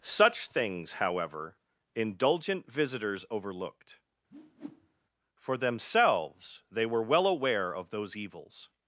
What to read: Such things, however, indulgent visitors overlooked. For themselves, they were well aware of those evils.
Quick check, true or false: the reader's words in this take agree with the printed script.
true